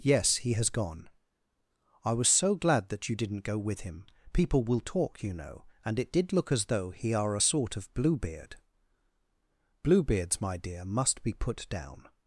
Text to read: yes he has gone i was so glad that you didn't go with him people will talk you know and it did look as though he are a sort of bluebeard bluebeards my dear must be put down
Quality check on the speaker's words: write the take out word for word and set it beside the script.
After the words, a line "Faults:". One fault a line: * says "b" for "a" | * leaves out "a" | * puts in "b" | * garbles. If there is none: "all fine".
yes he has gone i was so glad that you didn't go with him people will talk you know and it did look as though he are a sort of bluebeard bluebeards my dear must be put down
Faults:
all fine